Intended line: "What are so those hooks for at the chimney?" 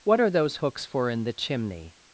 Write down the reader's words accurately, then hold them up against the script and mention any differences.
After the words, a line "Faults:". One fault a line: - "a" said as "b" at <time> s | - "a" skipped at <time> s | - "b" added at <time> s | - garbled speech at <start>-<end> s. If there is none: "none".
"What are those hooks for in the chimney?"
Faults:
- "so" skipped at 0.3 s
- "at" said as "in" at 1.1 s